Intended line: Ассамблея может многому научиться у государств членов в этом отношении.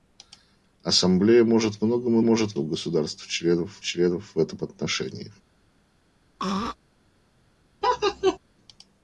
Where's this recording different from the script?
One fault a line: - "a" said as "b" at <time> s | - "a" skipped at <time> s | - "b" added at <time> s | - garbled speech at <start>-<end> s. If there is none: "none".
- "научиться" said as "может" at 2.2 s
- "членов" added at 3.8 s